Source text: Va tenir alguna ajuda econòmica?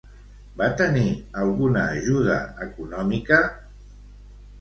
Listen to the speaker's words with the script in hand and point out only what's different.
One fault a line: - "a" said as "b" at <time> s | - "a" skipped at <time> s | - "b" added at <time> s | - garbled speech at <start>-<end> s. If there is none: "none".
none